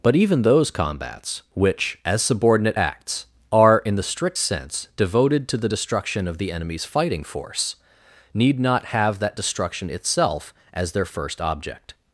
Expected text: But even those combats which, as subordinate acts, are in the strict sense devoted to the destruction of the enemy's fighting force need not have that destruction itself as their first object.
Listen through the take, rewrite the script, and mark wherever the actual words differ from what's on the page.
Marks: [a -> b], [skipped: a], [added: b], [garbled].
But even those combats which, as subordinate acts, are in the strict sense devoted to the destruction of the enemy's fighting force need not have that destruction itself as their first object.